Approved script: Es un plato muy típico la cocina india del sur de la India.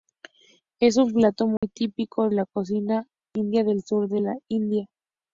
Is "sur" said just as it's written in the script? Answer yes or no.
yes